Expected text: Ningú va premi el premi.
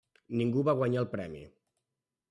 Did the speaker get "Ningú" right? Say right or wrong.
right